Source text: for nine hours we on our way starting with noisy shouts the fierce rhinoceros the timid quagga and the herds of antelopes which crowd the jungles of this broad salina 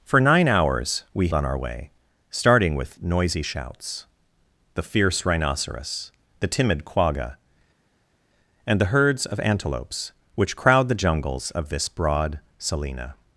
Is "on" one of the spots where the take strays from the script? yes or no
no